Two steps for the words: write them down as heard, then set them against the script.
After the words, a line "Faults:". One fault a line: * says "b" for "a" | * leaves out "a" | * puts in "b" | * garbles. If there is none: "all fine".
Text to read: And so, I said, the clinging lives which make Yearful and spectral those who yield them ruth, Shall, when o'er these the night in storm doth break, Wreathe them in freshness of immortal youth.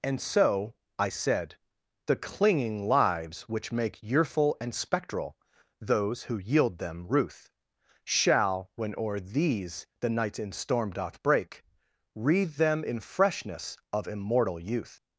And so, I said, the clinging lives which make Yearful and spectral those who yield them ruth, Shall, when o'er these the night in storm doth break, Wreathe them in freshness of immortal youth.
Faults:
all fine